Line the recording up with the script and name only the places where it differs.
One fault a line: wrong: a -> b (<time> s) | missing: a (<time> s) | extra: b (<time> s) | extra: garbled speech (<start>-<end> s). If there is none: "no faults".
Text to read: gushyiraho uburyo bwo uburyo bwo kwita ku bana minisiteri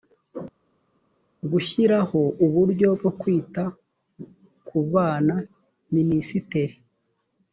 missing: uburyo bwo (3.1 s)